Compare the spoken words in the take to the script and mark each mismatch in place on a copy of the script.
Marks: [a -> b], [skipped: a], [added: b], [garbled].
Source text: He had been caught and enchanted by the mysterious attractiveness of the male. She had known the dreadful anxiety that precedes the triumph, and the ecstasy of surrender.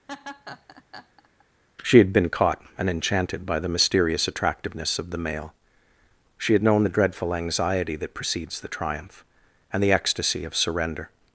[He -> She] had been caught and enchanted by the mysterious attractiveness of the male. She had known the dreadful anxiety that precedes the triumph, and the ecstasy of surrender.